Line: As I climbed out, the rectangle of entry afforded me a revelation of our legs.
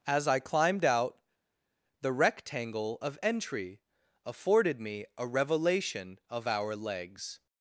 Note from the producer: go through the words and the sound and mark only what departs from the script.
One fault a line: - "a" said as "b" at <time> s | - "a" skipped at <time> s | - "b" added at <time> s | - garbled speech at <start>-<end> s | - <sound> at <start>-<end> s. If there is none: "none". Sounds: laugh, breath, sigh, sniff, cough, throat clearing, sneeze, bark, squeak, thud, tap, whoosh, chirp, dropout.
none